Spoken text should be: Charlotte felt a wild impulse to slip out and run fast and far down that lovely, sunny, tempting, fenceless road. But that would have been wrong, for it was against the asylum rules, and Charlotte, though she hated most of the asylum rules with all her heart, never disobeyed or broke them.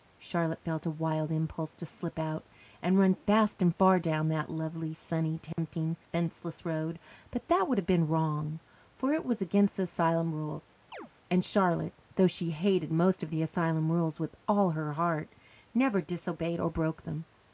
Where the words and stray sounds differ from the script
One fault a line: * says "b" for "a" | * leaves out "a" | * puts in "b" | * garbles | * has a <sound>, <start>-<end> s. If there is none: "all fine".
* has a dropout, 5.5-5.6 s
* has a chirp, 10.9-11.1 s